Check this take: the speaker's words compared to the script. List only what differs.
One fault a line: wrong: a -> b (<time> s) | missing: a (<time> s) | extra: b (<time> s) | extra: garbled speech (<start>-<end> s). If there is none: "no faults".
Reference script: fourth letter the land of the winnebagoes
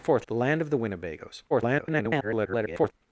missing: letter (0.2 s)
extra: garbled speech (1.5-2.9 s)